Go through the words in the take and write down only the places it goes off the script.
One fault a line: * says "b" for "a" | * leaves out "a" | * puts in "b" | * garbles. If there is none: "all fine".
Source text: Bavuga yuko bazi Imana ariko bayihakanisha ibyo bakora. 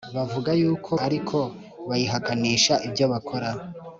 * leaves out "bazi Imana"